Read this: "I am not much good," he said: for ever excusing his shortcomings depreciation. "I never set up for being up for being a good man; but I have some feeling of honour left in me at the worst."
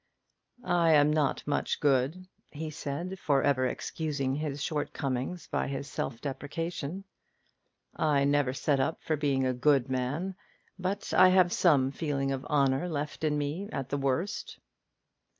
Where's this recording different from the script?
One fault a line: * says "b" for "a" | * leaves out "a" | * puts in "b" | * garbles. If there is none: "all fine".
* puts in "by his self"
* leaves out "up for being"